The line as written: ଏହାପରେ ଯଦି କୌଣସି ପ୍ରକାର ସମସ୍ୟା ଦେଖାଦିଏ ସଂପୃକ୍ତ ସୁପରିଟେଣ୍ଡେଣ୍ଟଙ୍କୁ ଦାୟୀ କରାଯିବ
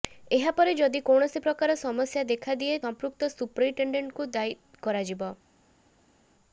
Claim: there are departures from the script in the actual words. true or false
false